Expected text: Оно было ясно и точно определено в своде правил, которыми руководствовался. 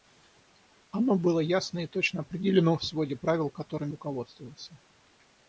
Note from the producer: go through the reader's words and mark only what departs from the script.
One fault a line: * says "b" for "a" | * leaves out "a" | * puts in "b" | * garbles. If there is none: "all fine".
all fine